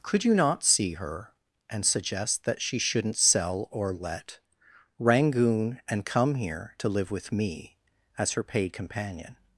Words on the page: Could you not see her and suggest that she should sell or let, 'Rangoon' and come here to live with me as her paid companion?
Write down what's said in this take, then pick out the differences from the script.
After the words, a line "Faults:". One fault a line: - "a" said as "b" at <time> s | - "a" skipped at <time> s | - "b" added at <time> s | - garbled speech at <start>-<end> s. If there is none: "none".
Could you not see her and suggest that she shouldn't sell or let, 'Rangoon' and come here to live with me as her paid companion?
Faults:
- "should" said as "shouldn't" at 2.8 s